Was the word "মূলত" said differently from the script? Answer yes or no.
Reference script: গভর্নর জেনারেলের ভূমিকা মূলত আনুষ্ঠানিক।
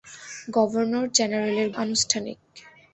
yes